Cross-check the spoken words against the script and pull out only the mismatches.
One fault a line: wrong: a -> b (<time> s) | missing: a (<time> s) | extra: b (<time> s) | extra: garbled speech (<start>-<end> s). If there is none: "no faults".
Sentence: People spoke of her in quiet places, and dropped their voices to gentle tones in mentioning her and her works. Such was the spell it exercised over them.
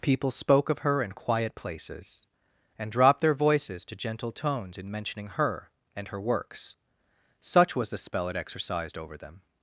no faults